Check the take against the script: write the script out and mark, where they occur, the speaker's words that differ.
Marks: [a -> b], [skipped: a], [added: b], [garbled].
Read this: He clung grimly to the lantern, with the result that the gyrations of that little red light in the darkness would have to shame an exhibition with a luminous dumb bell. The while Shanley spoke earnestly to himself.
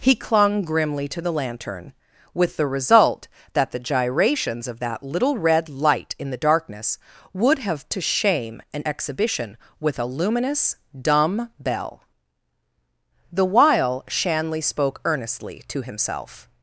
He clung grimly to the lantern, with the result that the gyrations of that little red light in the darkness would have to shame an exhibition with a luminous dumb bell. The while Shanley spoke earnestly to himself.